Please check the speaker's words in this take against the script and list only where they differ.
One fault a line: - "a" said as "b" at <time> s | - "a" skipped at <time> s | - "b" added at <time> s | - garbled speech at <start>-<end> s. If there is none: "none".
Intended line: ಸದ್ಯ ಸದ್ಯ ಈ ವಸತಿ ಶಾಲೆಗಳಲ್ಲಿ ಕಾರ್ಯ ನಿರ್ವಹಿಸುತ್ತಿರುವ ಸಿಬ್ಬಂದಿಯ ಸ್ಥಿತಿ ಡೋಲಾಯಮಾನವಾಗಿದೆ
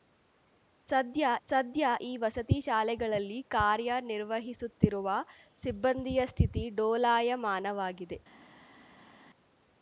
none